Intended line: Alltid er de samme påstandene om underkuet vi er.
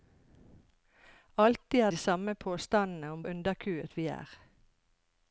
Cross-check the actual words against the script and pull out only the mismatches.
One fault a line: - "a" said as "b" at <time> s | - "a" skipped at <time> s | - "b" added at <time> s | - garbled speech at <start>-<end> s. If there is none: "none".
none